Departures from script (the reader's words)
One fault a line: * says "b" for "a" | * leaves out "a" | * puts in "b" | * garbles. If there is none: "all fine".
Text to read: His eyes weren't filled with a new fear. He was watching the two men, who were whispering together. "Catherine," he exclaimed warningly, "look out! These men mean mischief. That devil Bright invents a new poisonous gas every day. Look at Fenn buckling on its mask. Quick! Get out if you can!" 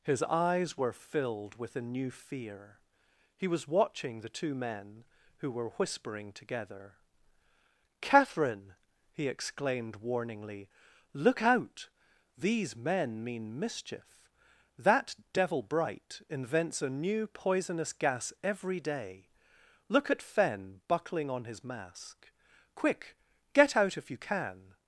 * says "were" for "weren't"
* says "his" for "its"